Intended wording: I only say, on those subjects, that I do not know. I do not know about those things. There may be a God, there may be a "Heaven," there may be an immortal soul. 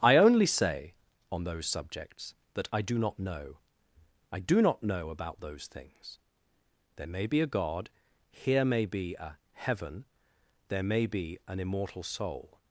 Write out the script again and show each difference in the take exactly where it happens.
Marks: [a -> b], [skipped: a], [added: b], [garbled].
I only say, on those subjects, that I do not know. I do not know about those things. There may be a God, [there -> here] may be a "Heaven," there may be an immortal soul.